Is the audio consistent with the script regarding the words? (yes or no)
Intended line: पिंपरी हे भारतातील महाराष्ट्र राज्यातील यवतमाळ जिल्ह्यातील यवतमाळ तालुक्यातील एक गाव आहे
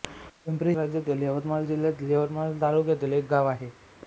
no